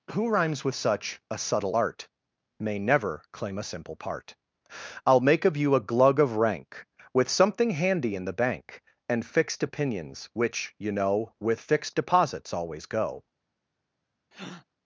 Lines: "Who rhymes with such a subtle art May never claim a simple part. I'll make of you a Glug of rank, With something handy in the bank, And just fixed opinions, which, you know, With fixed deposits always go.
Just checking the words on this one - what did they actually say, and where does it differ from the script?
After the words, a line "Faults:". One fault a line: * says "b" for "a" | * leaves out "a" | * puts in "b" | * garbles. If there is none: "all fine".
"Who rhymes with such a subtle art May never claim a simple part. I'll make of you a Glug of rank, With something handy in the bank, And fixed opinions, which, you know, With fixed deposits always go.
Faults:
* leaves out "just"